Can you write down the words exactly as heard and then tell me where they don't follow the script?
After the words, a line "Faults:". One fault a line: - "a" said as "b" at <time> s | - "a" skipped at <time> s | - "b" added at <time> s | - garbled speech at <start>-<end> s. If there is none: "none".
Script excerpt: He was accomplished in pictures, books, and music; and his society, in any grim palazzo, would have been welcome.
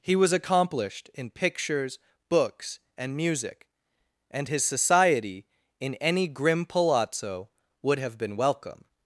He was accomplished in pictures, books, and music; and his society, in any grim palazzo, would have been welcome.
Faults:
none